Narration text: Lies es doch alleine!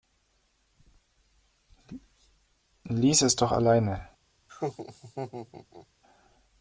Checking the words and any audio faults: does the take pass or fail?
fail